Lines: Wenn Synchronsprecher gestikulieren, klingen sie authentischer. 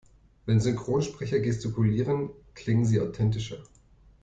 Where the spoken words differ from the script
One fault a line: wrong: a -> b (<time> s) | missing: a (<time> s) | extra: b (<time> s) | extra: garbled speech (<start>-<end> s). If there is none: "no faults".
no faults